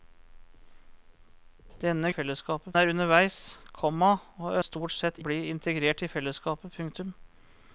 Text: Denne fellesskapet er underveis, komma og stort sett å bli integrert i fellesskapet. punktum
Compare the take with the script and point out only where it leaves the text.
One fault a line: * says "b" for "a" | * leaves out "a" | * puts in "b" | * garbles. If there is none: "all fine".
all fine